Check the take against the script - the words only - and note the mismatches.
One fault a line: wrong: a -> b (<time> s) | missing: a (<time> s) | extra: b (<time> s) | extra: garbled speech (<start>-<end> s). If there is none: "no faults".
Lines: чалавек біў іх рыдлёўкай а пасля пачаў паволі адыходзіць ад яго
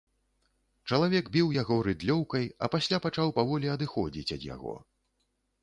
wrong: іх -> яго (1.5 s)